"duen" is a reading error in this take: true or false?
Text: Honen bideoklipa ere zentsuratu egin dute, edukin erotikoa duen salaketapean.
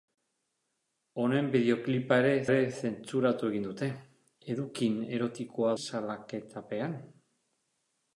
true